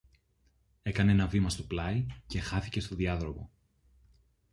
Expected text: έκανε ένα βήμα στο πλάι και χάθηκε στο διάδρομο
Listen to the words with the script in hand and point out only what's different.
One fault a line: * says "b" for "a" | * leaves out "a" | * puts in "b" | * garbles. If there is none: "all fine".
all fine